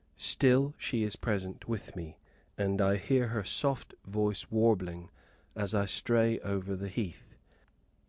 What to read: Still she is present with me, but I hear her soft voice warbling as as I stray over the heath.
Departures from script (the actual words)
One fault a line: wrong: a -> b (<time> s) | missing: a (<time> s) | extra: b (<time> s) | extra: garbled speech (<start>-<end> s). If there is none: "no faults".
wrong: but -> and (2.5 s)
missing: as (5.7 s)